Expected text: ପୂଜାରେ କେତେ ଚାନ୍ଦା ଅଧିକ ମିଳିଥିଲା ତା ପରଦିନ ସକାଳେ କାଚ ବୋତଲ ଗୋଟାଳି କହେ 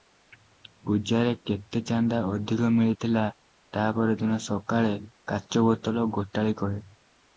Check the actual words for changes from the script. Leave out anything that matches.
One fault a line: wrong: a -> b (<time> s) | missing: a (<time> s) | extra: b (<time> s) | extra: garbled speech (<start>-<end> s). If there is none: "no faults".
no faults